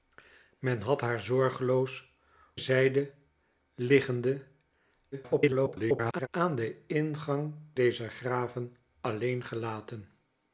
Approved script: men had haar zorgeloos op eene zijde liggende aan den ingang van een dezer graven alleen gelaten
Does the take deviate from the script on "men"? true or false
false